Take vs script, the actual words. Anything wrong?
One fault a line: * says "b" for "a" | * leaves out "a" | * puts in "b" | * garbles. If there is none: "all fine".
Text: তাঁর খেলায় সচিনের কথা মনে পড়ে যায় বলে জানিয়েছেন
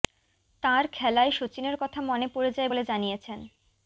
all fine